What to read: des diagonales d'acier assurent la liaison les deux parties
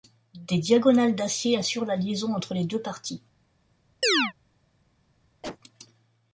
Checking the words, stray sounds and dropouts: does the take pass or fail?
fail